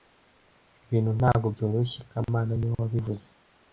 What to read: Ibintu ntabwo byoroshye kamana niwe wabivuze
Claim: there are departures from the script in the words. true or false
false